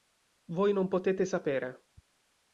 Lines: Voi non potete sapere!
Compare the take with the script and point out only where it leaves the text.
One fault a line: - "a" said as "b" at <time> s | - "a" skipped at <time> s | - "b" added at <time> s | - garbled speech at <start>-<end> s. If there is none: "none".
none